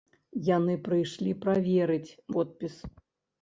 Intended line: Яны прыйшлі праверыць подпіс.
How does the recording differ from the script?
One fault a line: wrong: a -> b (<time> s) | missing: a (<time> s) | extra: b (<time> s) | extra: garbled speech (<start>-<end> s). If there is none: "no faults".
no faults